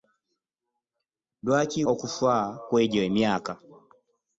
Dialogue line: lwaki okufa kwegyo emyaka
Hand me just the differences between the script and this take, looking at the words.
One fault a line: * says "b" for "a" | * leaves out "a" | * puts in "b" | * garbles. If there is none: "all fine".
all fine